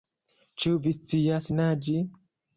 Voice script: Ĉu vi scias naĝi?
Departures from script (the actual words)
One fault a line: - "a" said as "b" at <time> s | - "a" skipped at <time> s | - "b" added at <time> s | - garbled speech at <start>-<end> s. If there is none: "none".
none